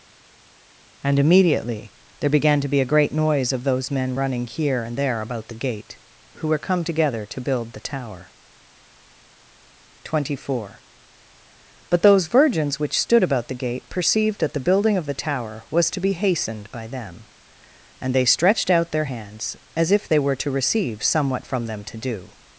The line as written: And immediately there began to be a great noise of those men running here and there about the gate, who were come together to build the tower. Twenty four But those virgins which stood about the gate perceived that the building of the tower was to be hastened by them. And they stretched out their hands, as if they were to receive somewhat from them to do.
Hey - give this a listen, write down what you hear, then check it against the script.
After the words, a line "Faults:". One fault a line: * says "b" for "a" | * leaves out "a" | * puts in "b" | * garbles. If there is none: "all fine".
And immediately there began to be a great noise of those men running here and there about the gate, who were come together to build the tower. Twenty four But those virgins which stood about the gate perceived that the building of the tower was to be hastened by them. And they stretched out their hands, as if they were to receive somewhat from them to do.
Faults:
all fine